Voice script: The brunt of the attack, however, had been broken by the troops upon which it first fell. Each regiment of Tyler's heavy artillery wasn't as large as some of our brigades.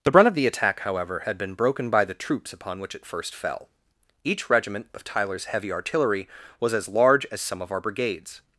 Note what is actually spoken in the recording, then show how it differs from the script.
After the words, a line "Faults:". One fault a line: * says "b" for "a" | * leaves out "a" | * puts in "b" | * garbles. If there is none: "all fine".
The brunt of the attack, however, had been broken by the troops upon which it first fell. Each regiment of Tyler's heavy artillery was as large as some of our brigades.
Faults:
* says "was" for "wasn't"